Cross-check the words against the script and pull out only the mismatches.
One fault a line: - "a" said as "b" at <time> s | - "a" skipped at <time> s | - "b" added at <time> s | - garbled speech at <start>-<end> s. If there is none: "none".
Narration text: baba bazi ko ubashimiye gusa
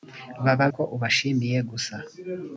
- "bazi" skipped at 0.7 s